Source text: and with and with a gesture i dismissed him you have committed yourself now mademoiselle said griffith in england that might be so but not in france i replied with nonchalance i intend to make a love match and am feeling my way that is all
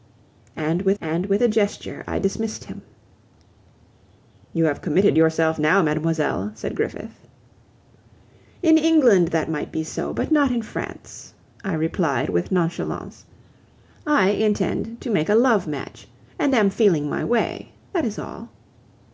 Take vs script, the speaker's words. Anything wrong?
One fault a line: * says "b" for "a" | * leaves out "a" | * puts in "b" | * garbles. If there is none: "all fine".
all fine